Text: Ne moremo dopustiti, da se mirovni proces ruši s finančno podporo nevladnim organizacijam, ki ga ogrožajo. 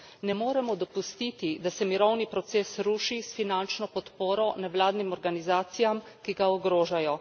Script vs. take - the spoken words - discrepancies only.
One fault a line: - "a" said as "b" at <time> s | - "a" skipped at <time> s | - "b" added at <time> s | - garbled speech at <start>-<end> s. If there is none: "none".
none